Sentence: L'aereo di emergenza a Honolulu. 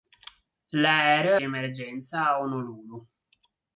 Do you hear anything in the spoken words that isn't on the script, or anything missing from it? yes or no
no